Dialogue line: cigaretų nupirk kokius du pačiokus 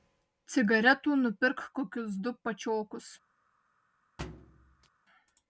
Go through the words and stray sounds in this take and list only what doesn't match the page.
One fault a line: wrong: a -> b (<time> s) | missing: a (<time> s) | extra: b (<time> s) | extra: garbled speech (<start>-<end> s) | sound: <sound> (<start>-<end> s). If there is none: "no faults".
sound: thud (4.2-4.9 s)